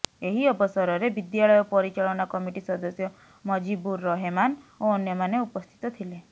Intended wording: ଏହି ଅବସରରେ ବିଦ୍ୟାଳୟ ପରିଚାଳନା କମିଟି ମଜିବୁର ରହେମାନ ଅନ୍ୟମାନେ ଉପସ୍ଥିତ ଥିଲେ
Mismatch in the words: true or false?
true